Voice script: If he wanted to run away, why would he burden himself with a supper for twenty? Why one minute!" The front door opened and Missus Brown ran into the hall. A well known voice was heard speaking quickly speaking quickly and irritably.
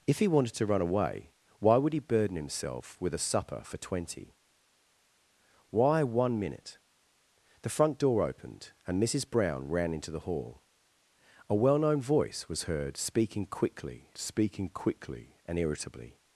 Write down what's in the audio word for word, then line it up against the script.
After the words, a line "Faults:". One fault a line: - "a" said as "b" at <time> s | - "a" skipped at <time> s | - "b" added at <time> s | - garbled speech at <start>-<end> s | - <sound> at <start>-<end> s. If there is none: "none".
If he wanted to run away, why would he burden himself with a supper for twenty? Why one minute!" The front door opened and Missus Brown ran into the hall. A well known voice was heard speaking quickly speaking quickly and irritably.
Faults:
none